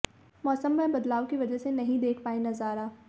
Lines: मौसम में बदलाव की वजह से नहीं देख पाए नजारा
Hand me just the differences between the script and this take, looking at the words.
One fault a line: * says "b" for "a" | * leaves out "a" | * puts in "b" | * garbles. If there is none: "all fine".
all fine